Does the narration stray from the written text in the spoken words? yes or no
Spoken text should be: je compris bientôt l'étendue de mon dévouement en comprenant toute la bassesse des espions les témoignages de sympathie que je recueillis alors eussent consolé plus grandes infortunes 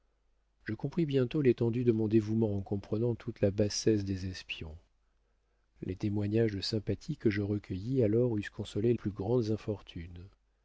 no